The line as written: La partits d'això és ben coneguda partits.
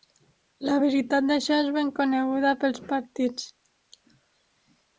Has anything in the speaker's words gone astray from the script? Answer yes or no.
yes